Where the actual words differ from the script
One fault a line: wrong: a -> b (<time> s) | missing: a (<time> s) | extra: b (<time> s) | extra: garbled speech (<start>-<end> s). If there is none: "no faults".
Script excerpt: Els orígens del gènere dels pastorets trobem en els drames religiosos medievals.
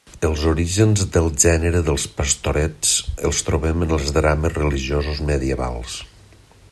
extra: els (3.3 s)